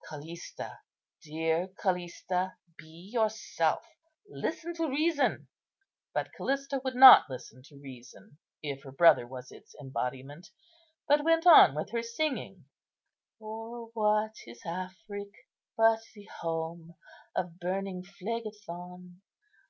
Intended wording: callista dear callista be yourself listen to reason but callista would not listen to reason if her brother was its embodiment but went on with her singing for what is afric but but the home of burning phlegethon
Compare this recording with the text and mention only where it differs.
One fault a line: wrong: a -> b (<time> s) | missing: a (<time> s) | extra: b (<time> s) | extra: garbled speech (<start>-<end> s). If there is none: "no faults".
missing: but (16.0 s)